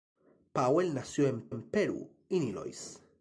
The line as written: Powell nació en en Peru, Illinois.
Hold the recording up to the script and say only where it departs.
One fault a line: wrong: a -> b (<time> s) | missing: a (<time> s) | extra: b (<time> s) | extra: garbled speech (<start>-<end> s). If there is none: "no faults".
no faults